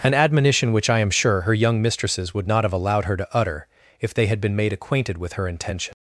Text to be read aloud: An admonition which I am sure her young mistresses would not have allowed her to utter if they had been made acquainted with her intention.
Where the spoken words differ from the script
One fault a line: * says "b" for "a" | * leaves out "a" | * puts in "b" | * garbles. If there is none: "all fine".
all fine